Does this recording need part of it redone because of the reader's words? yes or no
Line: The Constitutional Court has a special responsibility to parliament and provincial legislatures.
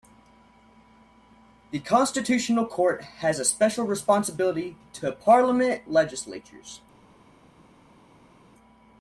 yes